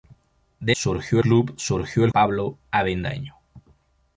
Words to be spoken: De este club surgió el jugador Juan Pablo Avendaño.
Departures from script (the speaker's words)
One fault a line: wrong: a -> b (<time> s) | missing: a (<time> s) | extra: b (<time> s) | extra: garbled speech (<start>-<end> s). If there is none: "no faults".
wrong: este -> surgió (0.7 s)
missing: jugador Juan (2.1 s)